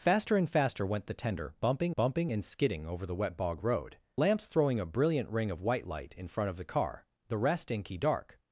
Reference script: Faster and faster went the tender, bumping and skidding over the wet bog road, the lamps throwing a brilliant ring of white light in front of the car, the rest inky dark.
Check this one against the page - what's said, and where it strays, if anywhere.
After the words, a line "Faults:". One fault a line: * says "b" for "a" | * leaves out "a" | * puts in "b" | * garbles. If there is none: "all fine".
Faster and faster went the tender, bumping bumping and skidding over the wet bog road, lamps throwing a brilliant ring of white light in front of the car, the rest inky dark.
Faults:
* puts in "bumping"
* leaves out "the"